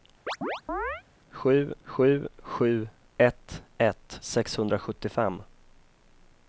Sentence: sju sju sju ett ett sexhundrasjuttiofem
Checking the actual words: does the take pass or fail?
pass